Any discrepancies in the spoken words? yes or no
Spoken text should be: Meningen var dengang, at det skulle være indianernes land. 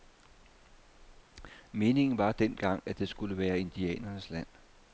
no